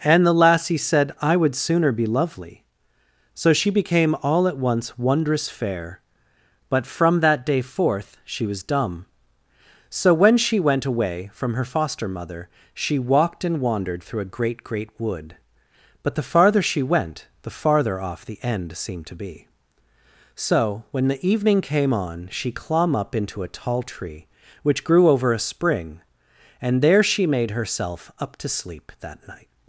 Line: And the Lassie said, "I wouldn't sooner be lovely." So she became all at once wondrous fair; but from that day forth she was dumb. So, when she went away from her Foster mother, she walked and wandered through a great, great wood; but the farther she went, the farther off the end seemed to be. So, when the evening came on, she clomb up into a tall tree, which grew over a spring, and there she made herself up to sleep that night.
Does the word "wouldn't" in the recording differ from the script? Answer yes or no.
yes